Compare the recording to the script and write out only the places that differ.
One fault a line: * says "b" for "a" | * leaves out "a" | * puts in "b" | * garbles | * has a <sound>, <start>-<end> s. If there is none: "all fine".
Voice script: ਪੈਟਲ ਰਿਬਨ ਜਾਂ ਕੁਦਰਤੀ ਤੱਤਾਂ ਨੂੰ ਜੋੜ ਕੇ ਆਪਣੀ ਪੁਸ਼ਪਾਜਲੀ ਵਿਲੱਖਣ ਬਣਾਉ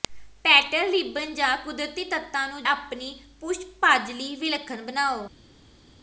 * leaves out "ਜੋੜ ਕੇ"